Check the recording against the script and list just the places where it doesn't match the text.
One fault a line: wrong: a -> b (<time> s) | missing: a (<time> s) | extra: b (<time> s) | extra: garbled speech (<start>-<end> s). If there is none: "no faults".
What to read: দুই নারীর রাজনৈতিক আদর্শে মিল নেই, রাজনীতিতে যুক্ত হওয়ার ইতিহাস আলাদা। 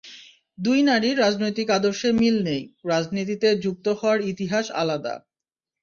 no faults